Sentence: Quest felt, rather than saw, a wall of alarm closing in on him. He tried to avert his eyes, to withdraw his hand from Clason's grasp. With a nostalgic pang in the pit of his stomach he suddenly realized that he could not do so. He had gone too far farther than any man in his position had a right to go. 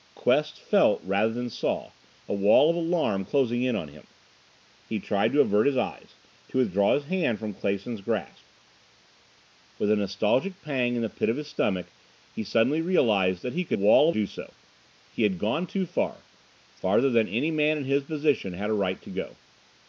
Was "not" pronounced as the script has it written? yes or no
no